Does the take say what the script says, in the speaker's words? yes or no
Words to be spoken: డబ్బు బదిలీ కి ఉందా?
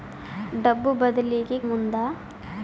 yes